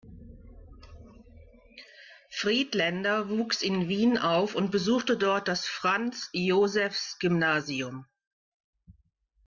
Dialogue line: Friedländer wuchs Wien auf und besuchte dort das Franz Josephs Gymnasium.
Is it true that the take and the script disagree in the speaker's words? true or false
true